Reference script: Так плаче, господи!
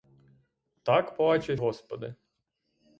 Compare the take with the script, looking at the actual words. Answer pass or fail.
pass